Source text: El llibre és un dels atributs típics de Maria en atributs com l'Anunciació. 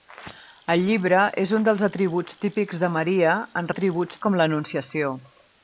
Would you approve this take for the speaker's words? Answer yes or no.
yes